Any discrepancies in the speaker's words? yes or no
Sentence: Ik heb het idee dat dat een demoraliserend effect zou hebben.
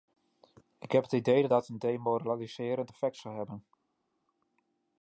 no